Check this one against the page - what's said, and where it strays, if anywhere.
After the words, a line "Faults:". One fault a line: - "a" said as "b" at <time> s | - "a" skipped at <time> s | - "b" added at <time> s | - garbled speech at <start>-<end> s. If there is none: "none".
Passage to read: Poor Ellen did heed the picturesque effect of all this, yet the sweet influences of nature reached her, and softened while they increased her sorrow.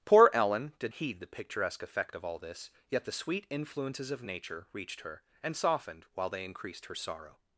Poor Ellen did heed the picturesque effect of all this, yet the sweet influences of nature reached her, and softened while they increased her sorrow.
Faults:
none